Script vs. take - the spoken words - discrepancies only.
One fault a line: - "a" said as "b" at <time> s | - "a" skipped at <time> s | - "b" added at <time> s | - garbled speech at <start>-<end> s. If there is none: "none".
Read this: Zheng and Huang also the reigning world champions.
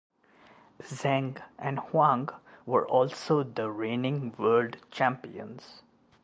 - "were" added at 2.7 s